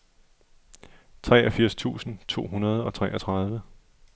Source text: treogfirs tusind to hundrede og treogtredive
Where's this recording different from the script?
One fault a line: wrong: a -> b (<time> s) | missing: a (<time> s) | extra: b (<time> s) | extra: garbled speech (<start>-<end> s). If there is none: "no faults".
no faults